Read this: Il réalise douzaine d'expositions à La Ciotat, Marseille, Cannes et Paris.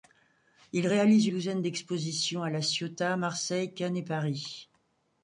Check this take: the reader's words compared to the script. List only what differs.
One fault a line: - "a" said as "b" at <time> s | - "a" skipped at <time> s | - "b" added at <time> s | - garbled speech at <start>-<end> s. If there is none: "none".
none